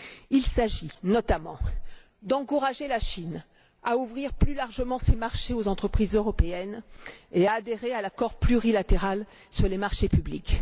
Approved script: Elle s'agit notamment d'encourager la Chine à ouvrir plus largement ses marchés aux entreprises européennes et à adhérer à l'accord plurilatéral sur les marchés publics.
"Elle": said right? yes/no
no